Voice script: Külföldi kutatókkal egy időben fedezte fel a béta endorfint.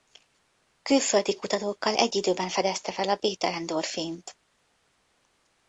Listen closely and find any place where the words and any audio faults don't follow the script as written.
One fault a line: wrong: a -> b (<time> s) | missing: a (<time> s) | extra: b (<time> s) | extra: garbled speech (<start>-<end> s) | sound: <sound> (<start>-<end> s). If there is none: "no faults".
no faults